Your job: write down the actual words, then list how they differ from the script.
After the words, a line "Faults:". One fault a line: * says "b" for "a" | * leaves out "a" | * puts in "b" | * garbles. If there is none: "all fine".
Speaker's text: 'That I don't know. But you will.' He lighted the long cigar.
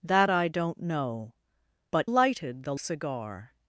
'That I don't know. But lighted the cigar.
Faults:
* leaves out "you will He"
* leaves out "long"